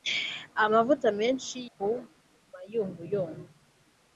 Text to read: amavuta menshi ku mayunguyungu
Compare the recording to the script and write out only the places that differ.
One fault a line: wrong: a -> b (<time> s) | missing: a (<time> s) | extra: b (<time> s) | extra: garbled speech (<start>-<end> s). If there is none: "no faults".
no faults